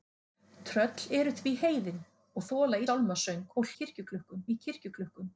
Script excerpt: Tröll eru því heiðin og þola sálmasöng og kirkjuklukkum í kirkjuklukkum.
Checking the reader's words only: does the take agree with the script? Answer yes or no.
yes